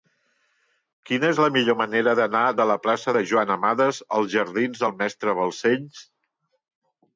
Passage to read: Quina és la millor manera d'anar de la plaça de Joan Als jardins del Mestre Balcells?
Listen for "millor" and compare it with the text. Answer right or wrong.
right